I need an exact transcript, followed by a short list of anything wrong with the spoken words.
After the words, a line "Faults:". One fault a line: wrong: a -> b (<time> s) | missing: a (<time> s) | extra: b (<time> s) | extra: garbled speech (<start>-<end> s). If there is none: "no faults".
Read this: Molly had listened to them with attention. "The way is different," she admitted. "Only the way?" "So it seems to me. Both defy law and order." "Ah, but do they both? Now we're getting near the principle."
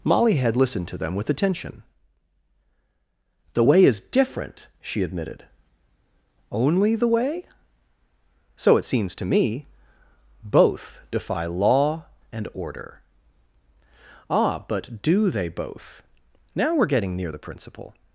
Molly had listened to them with attention. "The way is different," she admitted. "Only the way?" "So it seems to me. Both defy law and order." "Ah, but do they both? Now we're getting near the principle."
Faults:
no faults